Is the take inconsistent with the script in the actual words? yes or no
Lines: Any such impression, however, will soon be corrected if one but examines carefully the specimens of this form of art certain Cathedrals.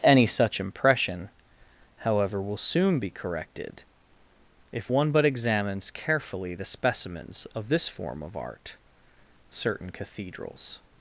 no